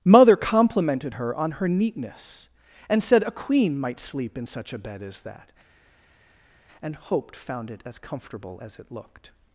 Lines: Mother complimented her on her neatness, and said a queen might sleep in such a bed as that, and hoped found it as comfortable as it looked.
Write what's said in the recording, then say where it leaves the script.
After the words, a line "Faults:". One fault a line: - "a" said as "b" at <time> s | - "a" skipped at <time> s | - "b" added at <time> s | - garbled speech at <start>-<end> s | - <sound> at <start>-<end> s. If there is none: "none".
Mother complimented her on her neatness, and said a queen might sleep in such a bed as that, and hoped found it as comfortable as it looked.
Faults:
none